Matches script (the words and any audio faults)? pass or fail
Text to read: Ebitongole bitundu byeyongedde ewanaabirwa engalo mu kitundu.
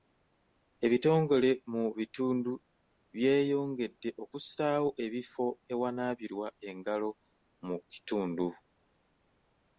fail